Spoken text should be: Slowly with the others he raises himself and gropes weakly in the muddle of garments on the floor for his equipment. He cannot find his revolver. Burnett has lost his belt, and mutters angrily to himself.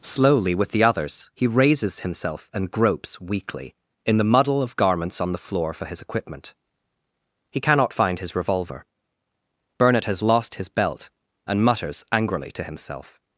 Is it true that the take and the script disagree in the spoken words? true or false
false